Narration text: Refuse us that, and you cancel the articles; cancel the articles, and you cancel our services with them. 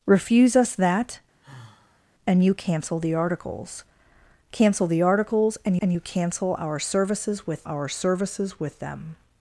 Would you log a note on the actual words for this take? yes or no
yes